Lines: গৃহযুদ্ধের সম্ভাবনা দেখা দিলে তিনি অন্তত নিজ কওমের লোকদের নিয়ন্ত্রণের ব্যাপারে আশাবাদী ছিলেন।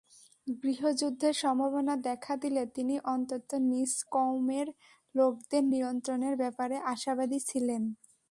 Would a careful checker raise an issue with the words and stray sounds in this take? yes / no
no